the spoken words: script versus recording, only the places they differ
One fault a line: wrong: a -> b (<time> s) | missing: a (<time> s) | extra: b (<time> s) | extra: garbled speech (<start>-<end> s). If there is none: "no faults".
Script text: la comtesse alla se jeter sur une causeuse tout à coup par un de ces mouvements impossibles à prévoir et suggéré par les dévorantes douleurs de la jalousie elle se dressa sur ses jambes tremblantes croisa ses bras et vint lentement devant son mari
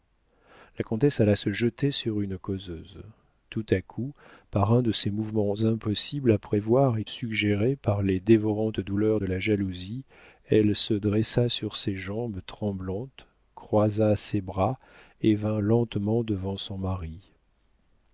no faults